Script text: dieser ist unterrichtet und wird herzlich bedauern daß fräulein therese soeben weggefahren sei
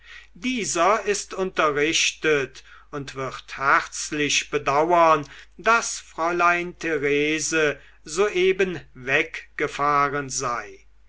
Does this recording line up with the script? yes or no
yes